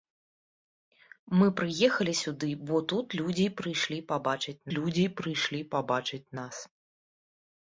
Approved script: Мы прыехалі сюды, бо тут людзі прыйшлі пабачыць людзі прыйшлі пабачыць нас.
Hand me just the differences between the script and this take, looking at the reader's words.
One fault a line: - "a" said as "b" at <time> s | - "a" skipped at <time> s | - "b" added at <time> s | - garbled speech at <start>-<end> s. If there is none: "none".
none